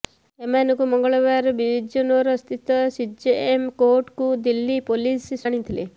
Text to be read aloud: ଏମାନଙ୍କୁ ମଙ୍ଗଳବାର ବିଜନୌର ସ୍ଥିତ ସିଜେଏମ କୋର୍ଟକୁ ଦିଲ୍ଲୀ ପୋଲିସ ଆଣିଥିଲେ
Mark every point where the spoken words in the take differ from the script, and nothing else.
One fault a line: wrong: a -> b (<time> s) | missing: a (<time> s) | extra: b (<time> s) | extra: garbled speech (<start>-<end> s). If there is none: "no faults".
no faults